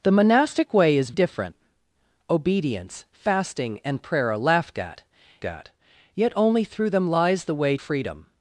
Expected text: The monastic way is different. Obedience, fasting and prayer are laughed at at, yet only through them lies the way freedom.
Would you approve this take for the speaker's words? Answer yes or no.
yes